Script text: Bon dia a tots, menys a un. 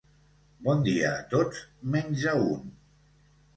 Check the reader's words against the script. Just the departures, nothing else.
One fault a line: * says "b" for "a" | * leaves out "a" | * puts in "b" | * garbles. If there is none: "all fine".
all fine